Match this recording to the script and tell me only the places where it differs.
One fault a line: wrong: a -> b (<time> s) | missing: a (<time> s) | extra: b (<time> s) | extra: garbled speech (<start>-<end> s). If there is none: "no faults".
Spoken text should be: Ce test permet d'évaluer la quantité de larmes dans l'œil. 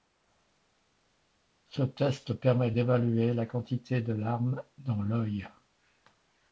no faults